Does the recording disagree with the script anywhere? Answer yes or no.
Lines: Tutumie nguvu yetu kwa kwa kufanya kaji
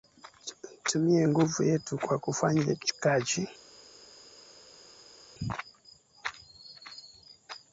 yes